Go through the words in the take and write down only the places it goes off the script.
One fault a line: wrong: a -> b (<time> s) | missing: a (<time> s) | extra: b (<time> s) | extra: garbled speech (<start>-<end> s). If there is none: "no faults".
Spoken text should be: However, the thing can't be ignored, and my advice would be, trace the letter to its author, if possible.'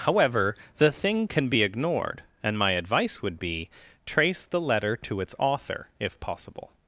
wrong: can't -> can (1.3 s)